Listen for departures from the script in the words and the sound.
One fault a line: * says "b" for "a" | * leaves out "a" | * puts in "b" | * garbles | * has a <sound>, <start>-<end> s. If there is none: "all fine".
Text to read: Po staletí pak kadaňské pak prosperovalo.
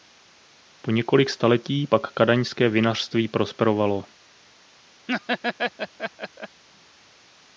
* puts in "několik"
* says "vinařství" for "pak"
* has a laugh, 5.1-6.6 s